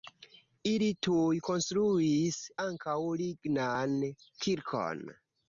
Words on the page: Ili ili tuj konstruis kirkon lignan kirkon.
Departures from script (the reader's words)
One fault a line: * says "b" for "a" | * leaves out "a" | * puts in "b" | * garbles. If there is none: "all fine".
* leaves out "ili"
* says "ankaŭ" for "kirkon"